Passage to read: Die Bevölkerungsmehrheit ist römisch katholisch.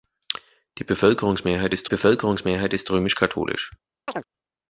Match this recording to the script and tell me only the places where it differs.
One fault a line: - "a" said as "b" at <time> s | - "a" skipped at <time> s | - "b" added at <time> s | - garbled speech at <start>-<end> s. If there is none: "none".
- "Bevölkerungsmehrheit ist" added at 1.9 s